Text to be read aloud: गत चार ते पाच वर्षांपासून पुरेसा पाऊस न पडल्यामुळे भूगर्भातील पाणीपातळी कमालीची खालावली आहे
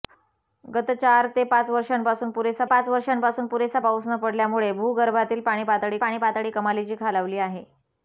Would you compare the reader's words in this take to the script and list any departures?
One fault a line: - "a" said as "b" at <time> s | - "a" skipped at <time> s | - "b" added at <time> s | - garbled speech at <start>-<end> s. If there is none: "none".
- "पाच वर्षांपासून पुरेसा" added at 2.6 s
- "पाणीपातळी" added at 6.0 s